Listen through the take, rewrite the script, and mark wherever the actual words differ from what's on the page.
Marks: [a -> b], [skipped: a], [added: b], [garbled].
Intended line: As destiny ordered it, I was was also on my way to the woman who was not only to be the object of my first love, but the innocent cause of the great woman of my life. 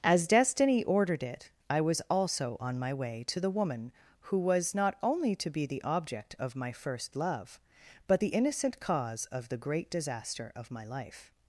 As destiny ordered it, I was [skipped: was] also on my way to the woman who was not only to be the object of my first love, but the innocent cause of the great [woman -> disaster] of my life.